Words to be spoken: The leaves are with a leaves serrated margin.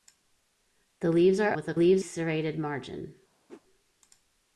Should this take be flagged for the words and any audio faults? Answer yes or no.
yes